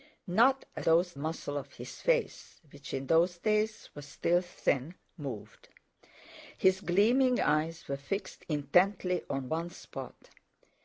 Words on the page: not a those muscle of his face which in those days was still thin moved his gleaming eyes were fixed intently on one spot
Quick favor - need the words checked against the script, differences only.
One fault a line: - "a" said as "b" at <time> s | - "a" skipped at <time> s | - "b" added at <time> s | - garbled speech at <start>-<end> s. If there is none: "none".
none